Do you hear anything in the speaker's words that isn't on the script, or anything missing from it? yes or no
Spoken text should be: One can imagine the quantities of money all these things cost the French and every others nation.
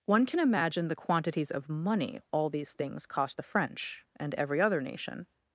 yes